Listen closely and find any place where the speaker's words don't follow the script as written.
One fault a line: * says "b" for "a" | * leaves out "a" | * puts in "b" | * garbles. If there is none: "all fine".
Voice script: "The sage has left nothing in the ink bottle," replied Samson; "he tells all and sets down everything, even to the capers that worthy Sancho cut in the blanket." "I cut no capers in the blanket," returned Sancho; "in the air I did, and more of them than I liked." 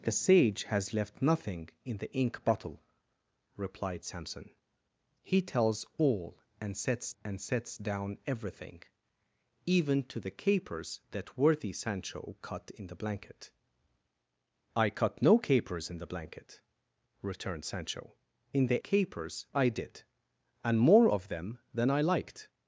* puts in "and sets"
* says "capers" for "air"